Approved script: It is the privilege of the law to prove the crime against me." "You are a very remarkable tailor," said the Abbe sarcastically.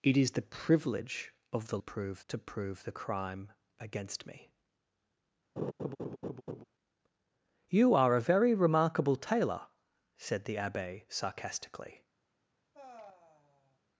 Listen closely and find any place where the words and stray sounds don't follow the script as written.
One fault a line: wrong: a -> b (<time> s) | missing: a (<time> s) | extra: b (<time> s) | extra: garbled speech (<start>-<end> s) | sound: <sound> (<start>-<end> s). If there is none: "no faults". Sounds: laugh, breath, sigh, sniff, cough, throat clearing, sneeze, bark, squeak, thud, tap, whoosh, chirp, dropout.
wrong: law -> prove (1.8 s)
sound: laugh (5.6-6.6 s)
sound: sigh (12.7-13.8 s)